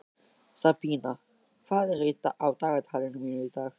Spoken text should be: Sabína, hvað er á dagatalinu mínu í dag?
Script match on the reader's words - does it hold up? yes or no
yes